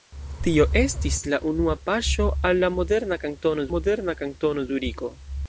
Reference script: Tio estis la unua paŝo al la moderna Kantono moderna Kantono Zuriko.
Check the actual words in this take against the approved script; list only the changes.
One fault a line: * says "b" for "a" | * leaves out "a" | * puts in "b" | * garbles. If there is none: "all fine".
all fine